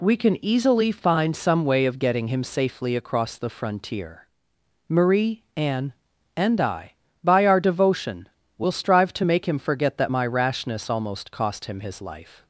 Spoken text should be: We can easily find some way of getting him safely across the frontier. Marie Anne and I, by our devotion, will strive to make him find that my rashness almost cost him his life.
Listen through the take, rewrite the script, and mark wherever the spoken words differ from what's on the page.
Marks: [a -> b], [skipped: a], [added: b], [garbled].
We can easily find some way of getting him safely across the frontier. Marie Anne and I, by our devotion, will strive to make him [find -> forget] that my rashness almost cost him his life.